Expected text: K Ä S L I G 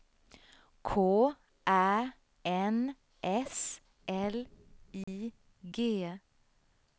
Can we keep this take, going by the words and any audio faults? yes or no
no